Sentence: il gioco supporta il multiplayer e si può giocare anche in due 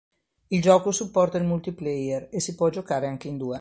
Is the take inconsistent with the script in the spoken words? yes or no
no